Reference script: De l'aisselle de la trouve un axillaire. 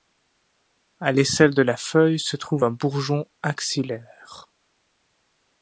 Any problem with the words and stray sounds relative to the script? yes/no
yes